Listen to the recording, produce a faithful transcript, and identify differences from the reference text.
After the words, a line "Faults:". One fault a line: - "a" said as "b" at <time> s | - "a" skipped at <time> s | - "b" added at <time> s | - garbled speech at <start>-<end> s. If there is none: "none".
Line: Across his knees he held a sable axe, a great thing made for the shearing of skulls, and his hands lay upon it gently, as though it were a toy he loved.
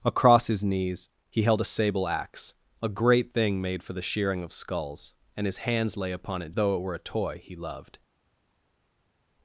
Across his knees he held a sable axe, a great thing made for the shearing of skulls, and his hands lay upon it though it were a toy he loved.
Faults:
- "gently as" skipped at 6.5 s